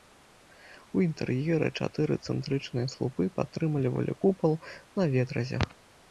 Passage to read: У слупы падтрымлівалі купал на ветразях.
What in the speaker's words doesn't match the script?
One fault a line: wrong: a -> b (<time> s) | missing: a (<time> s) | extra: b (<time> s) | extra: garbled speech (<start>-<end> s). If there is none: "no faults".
extra: інтэр'еры чатыры цэнтрычныя (1.1 s)